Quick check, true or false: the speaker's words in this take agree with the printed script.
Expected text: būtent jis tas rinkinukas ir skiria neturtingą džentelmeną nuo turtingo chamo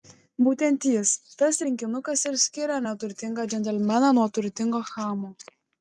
true